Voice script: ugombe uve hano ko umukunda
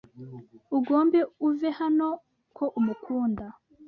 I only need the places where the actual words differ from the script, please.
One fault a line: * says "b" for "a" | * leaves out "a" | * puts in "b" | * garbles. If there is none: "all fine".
all fine